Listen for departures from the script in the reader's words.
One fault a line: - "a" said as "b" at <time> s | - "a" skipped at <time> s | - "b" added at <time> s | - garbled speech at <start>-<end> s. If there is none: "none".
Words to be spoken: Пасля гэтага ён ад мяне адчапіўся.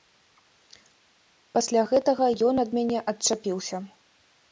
none